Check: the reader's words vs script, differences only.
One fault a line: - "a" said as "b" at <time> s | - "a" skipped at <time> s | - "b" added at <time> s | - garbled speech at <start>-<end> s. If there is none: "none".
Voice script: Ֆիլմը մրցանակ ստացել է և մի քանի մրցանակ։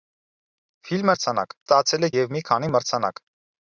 none